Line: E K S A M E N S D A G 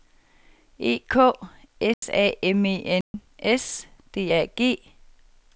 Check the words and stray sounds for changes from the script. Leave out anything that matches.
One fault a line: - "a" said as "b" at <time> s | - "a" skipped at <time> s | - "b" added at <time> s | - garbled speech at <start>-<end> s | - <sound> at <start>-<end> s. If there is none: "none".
- dropout at 1.9-2.0 s
- dropout at 3.0-3.1 s